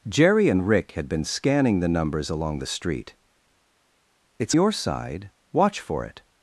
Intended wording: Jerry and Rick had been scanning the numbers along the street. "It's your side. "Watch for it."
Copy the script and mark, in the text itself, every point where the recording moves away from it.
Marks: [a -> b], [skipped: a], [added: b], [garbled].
Jerry and Rick had been scanning the numbers along the street. "It's your side. "Watch for it."